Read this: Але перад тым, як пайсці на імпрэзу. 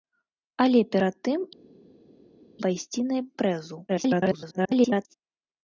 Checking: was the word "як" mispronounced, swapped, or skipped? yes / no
yes